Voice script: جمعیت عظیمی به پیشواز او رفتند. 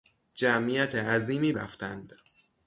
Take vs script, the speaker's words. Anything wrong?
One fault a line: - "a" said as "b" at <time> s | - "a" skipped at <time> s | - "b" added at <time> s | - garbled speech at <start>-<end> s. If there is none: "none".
- "به پیشواز او" skipped at 1.5 s